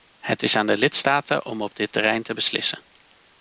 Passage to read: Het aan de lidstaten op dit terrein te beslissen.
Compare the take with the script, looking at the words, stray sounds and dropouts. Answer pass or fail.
fail